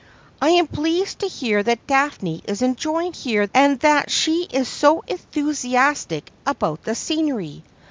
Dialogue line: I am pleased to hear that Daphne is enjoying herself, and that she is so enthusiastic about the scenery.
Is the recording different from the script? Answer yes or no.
yes